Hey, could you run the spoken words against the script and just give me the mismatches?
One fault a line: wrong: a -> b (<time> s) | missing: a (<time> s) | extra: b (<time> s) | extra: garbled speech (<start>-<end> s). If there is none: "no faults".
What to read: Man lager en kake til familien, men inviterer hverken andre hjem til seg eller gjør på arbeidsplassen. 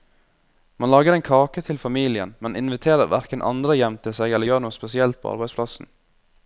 extra: noe spesielt (4.6 s)